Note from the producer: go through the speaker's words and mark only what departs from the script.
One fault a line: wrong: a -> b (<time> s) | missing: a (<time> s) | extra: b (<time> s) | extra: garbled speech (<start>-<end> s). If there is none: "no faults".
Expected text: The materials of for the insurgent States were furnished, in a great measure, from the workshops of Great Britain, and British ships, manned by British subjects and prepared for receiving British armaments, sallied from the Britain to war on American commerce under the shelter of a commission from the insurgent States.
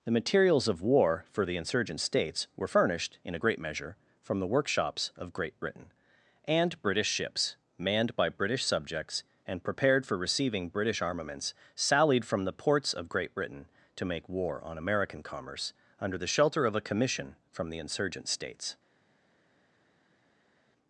extra: war (0.8 s)
extra: ports of Great (12.5 s)
extra: make (14.0 s)